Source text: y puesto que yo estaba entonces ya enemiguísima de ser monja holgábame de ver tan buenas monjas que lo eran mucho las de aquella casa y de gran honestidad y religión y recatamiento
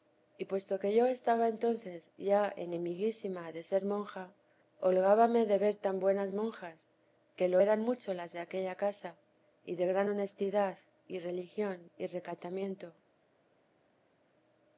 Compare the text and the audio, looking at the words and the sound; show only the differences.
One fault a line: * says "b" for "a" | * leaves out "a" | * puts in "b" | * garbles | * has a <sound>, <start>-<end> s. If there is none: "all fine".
all fine